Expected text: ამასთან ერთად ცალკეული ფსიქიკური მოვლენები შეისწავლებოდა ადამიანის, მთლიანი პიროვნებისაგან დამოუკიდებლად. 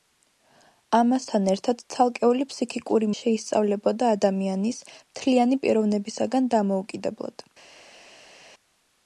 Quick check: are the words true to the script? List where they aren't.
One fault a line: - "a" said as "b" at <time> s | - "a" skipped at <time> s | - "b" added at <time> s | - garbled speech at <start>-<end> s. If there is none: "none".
- "მოვლენები" skipped at 3.1 s